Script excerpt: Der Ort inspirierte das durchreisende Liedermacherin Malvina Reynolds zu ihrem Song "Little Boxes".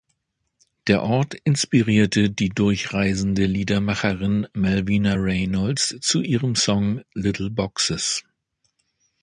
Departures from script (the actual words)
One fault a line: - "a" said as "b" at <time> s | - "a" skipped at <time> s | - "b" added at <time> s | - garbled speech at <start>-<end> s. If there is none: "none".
- "das" said as "die" at 2.3 s